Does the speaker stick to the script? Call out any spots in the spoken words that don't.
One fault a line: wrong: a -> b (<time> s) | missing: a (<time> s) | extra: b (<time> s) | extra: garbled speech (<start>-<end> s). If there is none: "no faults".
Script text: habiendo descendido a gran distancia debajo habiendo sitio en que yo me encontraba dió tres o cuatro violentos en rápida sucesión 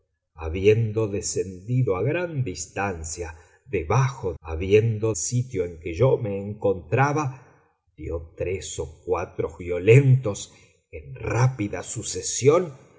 no faults